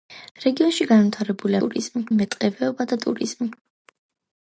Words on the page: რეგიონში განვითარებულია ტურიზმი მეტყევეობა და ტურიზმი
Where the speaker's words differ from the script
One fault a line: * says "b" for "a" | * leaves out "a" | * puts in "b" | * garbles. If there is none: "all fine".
all fine